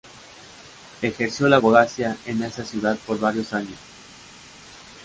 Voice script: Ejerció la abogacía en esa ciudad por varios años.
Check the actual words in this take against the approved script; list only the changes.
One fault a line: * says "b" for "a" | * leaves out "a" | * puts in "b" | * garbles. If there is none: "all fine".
all fine